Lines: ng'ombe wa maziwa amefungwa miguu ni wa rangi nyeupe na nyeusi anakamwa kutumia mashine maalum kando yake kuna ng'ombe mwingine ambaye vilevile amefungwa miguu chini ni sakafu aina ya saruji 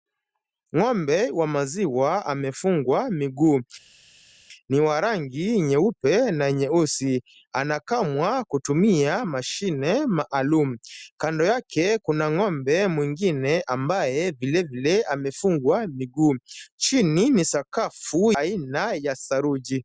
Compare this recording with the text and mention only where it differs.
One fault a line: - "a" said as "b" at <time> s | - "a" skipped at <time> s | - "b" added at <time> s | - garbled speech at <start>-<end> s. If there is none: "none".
none